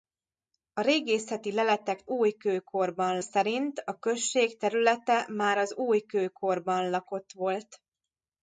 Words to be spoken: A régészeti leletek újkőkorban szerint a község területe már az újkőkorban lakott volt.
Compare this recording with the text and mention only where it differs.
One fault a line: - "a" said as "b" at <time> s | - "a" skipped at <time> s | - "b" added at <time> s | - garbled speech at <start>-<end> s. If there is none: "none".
none